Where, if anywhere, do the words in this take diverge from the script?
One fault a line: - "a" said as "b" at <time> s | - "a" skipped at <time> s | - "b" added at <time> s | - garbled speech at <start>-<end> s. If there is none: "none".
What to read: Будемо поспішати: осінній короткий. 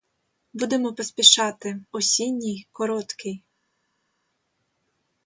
none